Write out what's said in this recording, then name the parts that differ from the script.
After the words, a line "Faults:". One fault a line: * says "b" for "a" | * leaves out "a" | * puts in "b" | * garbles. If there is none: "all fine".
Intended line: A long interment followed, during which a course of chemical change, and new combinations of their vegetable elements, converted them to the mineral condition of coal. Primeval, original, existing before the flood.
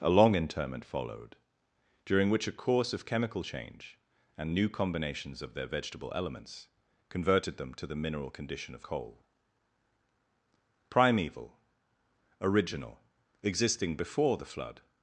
A long interment followed, during which a course of chemical change, and new combinations of their vegetable elements, converted them to the mineral condition of coal. Primeval, original, existing before the flood.
Faults:
all fine